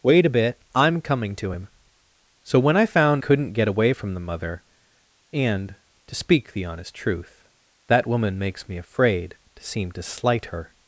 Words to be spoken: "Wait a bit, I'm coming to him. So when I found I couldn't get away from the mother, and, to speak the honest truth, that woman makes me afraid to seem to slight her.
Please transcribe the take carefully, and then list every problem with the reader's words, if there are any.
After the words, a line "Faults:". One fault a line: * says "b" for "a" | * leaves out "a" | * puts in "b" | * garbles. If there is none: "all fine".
"Wait a bit, I'm coming to him. So when I found couldn't get away from the mother, and, to speak the honest truth, that woman makes me afraid to seem to slight her.
Faults:
* leaves out "I"